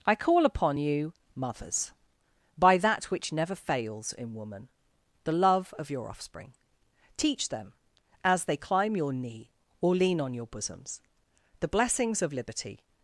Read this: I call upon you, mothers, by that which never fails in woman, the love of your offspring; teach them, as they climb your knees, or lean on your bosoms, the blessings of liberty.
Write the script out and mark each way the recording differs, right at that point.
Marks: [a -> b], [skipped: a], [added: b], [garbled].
I call upon you, mothers, by that which never fails in woman, the love of your offspring; teach them, as they climb your [knees, -> knee] or lean on your bosoms, the blessings of liberty.